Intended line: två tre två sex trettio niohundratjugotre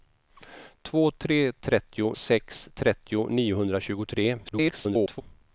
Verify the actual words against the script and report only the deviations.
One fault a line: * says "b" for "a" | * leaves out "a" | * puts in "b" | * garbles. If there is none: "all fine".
* says "trettio" for "två"
* garbles